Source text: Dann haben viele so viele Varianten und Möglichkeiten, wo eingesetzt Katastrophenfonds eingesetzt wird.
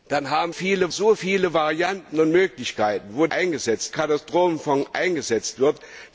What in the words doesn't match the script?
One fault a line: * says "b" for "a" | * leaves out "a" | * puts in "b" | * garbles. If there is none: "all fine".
all fine